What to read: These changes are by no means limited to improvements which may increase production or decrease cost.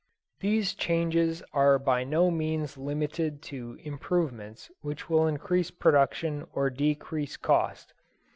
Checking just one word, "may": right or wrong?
wrong